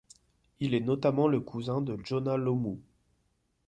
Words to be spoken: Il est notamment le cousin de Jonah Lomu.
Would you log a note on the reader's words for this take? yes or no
no